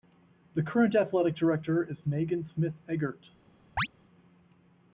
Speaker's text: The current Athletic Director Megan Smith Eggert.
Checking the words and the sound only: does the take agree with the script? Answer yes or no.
no